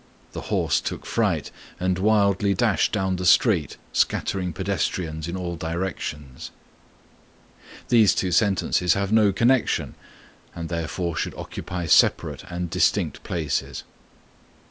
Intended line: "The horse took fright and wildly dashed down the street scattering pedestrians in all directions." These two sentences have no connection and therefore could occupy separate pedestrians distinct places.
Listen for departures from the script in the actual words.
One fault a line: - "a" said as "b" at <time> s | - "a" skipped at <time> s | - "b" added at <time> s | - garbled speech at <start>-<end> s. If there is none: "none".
- "could" said as "should" at 11.2 s
- "pedestrians" said as "and" at 12.5 s